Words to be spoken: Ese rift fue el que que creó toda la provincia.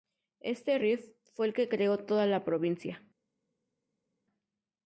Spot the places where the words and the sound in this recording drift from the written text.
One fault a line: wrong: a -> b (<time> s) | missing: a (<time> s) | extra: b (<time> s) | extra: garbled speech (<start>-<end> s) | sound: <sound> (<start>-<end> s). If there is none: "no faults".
wrong: Ese -> Este (0.4 s)
missing: que (1.7 s)